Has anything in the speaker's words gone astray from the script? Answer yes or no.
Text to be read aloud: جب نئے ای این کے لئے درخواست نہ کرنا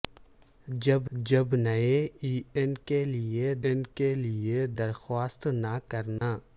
yes